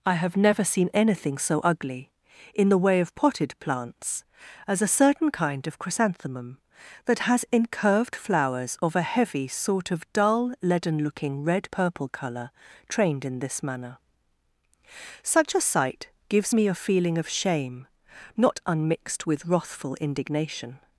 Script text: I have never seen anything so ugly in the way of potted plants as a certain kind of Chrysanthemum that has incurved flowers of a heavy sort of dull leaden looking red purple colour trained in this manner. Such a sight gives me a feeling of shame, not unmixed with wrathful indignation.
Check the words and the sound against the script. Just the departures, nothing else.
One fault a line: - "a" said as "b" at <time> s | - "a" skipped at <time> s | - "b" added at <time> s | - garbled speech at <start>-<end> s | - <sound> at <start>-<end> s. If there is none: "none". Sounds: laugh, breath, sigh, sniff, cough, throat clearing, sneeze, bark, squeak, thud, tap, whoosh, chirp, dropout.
none